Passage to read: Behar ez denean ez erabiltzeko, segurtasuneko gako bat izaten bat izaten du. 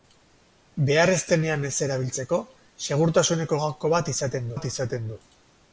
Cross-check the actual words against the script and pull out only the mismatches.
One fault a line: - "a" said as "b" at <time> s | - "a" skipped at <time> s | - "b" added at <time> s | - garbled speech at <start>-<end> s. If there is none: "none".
none